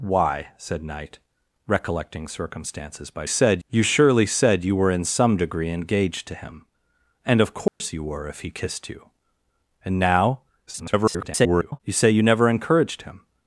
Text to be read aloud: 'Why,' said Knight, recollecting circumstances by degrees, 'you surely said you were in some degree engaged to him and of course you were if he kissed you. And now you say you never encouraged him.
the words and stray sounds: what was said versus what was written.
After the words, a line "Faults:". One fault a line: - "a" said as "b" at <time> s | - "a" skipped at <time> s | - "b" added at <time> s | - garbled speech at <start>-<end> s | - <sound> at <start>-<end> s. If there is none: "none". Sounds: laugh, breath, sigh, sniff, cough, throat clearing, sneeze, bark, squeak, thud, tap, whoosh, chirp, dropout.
'Why,' said Knight, recollecting circumstances by said, 'you surely said you were in some degree engaged to him and of course you were if he kissed you. And now [garbled] you say you never encouraged him.
Faults:
- "degrees" said as "said" at 3.2 s
- dropout at 7.7-7.8 s
- garbled speech at 10.7-11.8 s